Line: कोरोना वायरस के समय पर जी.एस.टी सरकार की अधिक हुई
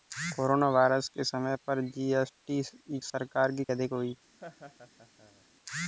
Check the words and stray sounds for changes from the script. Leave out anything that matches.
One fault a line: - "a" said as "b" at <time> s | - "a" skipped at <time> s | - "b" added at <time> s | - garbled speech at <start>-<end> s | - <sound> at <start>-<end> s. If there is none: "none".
- laugh at 4.4-5.5 s